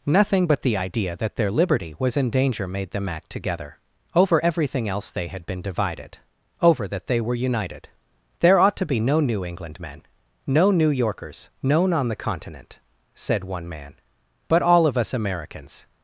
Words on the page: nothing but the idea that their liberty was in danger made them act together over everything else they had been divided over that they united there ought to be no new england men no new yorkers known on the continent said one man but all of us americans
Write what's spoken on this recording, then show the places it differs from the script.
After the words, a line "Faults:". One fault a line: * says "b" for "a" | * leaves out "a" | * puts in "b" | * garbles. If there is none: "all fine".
nothing but the idea that their liberty was in danger made them act together over everything else they had been divided over that they were united there ought to be no new england men no new yorkers known on the continent said one man but all of us americans
Faults:
* puts in "were"